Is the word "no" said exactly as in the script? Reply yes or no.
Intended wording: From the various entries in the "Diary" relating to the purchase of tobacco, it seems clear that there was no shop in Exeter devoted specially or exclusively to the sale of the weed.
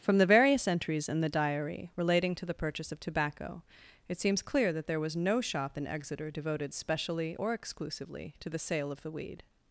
yes